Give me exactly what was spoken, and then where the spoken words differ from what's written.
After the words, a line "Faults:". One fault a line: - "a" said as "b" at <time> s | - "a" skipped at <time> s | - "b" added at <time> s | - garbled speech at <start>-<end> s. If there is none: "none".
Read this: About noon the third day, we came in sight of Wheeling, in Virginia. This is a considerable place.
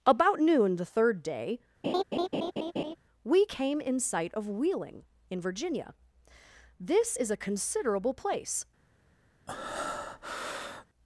About noon the third day, we came in sight of Wheeling, in Virginia. This is a considerable place.
Faults:
none